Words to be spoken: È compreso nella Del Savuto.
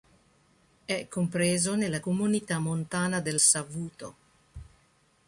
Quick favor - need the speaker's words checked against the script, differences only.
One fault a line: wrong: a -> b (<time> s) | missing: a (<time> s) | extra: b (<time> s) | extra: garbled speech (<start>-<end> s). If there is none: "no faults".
extra: Comunità Montana (2.0 s)